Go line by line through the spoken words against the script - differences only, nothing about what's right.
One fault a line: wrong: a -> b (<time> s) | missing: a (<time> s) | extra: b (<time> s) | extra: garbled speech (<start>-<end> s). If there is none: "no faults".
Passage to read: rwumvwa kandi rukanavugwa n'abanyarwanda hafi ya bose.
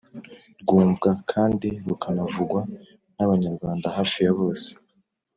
no faults